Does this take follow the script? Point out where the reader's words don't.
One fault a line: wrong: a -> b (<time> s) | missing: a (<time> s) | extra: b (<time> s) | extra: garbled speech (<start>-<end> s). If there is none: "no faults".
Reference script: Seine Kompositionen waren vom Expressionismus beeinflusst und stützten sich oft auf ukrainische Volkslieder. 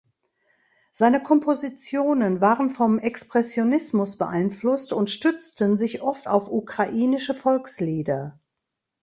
no faults